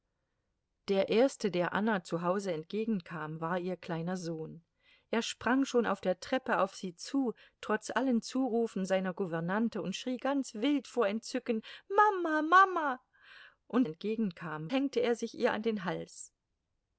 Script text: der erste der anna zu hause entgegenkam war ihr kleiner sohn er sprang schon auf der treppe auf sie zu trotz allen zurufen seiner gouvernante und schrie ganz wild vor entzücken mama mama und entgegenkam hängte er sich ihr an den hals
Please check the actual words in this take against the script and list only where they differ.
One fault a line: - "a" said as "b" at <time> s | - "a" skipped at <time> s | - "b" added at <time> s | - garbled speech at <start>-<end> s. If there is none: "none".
none